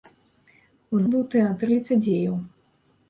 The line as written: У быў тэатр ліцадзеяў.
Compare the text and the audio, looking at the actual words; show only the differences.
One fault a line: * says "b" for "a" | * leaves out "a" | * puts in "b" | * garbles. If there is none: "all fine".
all fine